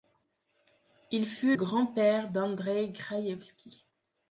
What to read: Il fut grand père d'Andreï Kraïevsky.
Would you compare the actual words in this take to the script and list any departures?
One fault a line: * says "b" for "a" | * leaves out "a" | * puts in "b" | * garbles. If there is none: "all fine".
all fine